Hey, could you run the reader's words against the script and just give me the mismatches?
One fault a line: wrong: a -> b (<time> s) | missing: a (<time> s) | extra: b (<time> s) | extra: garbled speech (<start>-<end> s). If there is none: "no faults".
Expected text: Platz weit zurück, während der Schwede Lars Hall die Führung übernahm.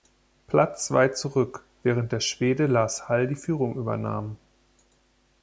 no faults